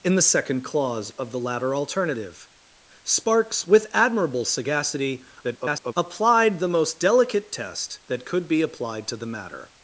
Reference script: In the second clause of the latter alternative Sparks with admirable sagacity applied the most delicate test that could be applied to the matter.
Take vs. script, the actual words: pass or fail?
fail